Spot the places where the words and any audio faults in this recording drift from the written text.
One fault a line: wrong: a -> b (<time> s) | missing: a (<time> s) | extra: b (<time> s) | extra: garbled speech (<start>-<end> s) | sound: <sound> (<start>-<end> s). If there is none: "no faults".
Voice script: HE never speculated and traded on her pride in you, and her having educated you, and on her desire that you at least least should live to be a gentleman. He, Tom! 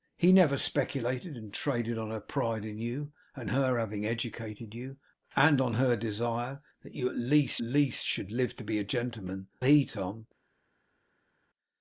no faults